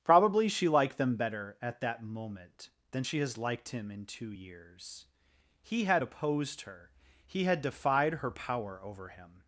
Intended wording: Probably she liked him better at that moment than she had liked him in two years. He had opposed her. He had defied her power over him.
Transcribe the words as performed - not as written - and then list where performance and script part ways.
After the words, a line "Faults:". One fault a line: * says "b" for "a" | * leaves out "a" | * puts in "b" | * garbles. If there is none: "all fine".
Probably she liked them better at that moment than she has liked him in two years. He had opposed her. He had defied her power over him.
Faults:
* says "them" for "him"
* says "has" for "had"